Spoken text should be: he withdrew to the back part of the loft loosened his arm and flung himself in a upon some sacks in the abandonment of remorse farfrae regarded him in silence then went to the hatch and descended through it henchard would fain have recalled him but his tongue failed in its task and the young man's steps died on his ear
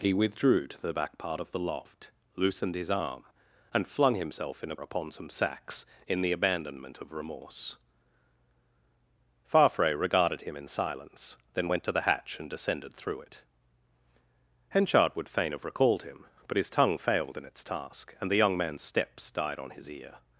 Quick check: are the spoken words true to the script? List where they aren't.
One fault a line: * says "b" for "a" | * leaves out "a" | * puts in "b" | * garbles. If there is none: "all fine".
all fine